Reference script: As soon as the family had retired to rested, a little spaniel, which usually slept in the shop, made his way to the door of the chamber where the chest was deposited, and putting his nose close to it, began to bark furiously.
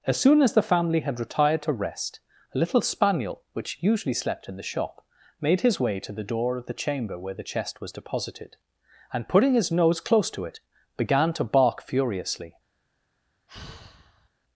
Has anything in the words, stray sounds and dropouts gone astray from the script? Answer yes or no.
yes